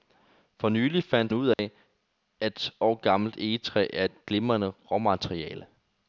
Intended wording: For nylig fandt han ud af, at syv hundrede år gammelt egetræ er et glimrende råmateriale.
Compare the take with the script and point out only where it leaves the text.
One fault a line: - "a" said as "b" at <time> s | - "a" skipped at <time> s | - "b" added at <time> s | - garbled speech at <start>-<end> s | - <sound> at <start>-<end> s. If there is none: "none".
- "han" skipped at 1.3 s
- dropout at 1.5-1.6 s
- "syv hundrede" skipped at 2.7 s